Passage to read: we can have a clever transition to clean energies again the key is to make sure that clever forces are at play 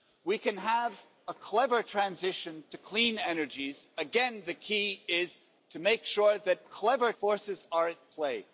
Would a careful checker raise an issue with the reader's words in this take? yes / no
no